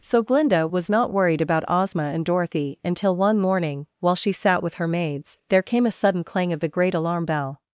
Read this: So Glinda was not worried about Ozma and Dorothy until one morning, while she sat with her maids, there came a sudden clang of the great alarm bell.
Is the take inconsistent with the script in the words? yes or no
no